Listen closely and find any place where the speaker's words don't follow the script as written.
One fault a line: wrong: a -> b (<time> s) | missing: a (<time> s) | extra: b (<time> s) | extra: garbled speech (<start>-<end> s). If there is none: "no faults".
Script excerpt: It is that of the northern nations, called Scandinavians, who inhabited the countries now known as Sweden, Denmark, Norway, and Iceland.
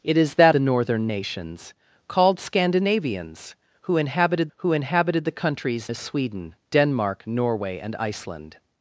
missing: of (0.6 s)
extra: who inhabited (4.6 s)
missing: now known (5.9 s)